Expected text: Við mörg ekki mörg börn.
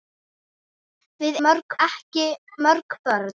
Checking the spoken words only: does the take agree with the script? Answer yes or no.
yes